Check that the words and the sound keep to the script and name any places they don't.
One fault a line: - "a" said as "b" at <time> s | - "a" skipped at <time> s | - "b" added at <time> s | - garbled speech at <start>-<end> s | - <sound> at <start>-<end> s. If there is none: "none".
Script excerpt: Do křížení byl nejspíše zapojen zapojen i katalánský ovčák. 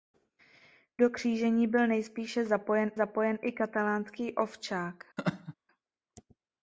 - laugh at 5.2-5.5 s